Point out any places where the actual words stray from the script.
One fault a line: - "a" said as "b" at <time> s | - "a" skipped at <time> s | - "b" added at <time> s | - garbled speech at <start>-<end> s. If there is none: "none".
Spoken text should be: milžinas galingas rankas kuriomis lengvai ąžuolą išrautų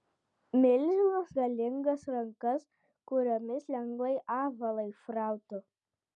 none